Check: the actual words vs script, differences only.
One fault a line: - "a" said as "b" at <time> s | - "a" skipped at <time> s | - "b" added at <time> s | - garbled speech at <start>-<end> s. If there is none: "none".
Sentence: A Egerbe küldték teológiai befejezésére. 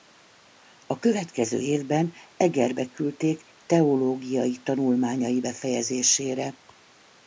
- "következő évben" added at 1.0 s
- "tanulmányai" added at 4.6 s